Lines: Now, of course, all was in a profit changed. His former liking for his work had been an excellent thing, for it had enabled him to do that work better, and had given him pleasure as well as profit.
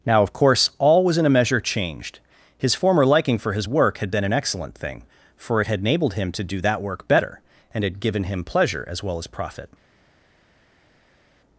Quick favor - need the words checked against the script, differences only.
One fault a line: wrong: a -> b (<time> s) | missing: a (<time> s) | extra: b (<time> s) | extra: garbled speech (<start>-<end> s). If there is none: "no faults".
wrong: profit -> measure (1.3 s)